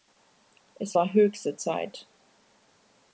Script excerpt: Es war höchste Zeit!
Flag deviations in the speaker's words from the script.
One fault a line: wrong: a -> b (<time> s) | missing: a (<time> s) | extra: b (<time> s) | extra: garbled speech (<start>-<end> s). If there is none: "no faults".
no faults